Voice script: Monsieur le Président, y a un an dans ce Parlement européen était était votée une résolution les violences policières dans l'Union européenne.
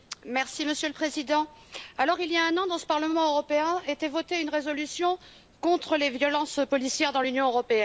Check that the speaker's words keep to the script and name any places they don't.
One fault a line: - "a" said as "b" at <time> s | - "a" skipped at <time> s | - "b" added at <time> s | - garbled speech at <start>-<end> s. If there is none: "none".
- "il" added at 2.0 s
- "était" skipped at 4.1 s
- "contre" added at 5.6 s